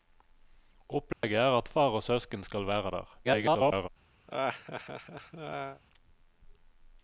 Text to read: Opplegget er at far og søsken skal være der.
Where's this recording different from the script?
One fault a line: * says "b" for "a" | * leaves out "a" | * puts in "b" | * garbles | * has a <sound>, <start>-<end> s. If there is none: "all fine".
* has a dropout, 1.1-1.2 s
* garbles
* has a laugh, 4.3-5.8 s